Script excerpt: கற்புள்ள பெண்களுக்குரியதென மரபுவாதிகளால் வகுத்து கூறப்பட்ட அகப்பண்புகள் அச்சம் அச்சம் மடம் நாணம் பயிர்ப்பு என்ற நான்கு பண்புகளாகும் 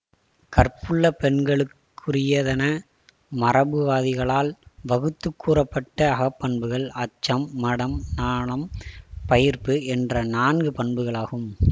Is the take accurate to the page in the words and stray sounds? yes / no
no